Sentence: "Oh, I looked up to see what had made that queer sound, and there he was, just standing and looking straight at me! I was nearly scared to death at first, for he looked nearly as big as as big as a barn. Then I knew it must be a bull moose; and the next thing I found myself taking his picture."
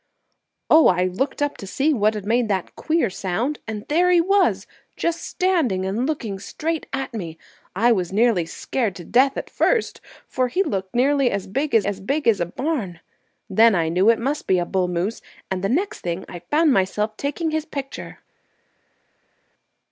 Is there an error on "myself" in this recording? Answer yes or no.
no